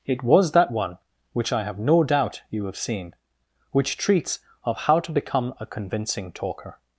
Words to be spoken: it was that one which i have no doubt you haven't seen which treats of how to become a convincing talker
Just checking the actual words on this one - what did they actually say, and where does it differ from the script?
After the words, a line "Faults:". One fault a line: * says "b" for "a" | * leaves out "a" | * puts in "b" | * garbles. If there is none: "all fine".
it was that one which i have no doubt you have seen which treats of how to become a convincing talker
Faults:
* says "have" for "haven't"